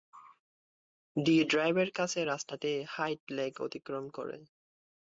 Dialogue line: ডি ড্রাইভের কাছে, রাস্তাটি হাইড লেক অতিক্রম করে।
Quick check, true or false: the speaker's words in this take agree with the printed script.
true